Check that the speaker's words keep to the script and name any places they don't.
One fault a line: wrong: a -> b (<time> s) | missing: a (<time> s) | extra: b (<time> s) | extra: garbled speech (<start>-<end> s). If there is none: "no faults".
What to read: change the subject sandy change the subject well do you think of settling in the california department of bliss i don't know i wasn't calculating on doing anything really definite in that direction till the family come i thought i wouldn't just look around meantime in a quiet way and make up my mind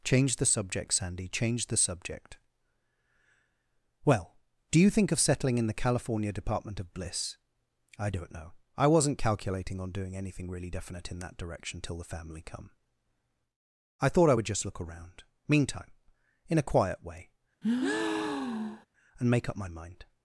wrong: wouldn't -> would (14.3 s)